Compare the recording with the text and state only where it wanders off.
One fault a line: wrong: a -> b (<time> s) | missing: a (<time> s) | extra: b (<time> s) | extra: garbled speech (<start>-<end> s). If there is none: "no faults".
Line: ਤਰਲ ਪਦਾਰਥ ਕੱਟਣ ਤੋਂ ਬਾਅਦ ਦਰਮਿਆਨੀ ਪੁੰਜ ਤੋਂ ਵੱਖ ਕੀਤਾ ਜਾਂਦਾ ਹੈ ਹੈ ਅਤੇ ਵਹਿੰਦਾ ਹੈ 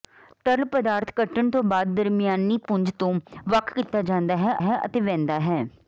no faults